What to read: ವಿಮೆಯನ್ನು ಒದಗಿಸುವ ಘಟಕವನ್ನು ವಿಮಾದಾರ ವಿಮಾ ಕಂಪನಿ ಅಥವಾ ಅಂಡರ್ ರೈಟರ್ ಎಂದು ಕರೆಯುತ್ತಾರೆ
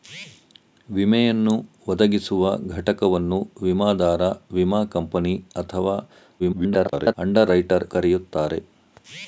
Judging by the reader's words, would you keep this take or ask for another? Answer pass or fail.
fail